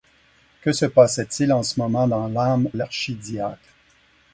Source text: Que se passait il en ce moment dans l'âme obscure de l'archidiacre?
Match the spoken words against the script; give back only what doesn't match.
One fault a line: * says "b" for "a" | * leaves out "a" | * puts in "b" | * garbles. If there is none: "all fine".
* leaves out "obscure de"